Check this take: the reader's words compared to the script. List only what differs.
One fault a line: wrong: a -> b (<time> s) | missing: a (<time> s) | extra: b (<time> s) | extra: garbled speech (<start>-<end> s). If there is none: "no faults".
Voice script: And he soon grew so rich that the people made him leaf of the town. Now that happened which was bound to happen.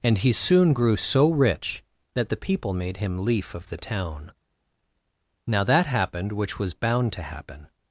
no faults